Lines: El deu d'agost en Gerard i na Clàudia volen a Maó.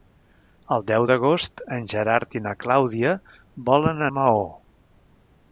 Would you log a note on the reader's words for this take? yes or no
no